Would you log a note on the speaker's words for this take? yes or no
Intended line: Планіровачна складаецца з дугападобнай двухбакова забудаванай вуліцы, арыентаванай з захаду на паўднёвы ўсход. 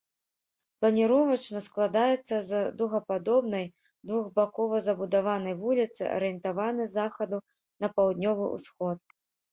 no